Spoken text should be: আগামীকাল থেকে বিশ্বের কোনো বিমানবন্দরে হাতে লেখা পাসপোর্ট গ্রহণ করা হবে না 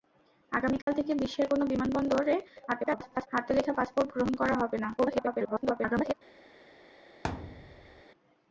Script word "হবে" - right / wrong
right